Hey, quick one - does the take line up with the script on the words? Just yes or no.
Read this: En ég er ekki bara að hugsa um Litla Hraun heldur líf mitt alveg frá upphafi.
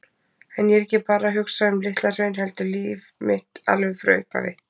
yes